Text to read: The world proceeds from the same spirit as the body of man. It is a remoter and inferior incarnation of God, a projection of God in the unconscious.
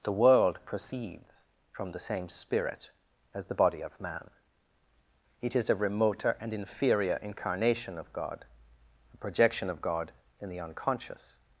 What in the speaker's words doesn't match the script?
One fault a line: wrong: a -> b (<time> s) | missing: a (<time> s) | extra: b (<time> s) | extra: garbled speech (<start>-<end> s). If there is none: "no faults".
no faults